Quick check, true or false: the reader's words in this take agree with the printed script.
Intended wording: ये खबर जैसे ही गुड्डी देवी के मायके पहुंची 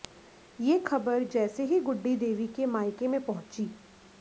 false